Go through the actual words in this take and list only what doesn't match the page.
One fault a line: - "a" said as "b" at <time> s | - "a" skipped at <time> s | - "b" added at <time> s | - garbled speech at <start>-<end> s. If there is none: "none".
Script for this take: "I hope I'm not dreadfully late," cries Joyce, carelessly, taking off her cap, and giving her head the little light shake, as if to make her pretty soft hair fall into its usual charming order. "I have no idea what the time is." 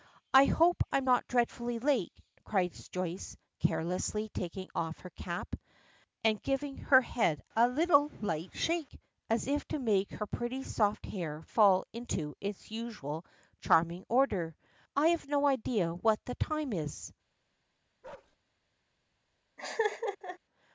- "the" said as "a" at 7.6 s